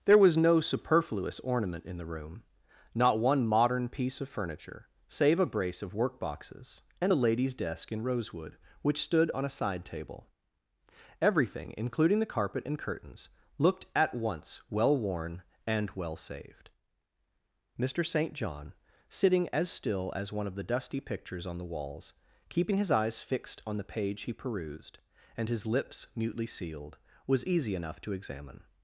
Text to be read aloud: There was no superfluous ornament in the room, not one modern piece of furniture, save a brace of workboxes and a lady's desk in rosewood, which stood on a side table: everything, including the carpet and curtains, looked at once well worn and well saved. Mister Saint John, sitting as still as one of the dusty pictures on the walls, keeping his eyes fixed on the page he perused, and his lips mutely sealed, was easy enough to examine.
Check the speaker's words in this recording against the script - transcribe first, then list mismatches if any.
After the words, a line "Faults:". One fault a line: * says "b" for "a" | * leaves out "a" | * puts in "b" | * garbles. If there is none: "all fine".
There was no superfluous ornament in the room, not one modern piece of furniture, save a brace of workboxes and a lady's desk in rosewood, which stood on a side table: everything, including the carpet and curtains, looked at once well worn and well saved. Mister Saint John, sitting as still as one of the dusty pictures on the walls, keeping his eyes fixed on the page he perused, and his lips mutely sealed, was easy enough to examine.
Faults:
all fine